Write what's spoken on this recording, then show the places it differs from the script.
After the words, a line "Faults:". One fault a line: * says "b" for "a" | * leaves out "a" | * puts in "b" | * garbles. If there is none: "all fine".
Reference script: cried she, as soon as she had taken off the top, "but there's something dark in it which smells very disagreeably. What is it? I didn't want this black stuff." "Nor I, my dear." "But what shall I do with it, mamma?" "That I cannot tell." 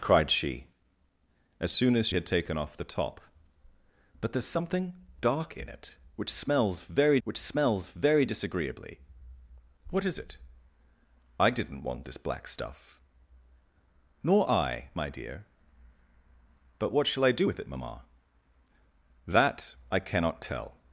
cried she, as soon as had taken off the top, "but there's something dark in it which smells very which smells very disagreeably. What is it? I didn't want this black stuff." "Nor I, my dear." "But what shall I do with it, mamma?" "That I cannot tell."
Faults:
* leaves out "she"
* puts in "which smells very"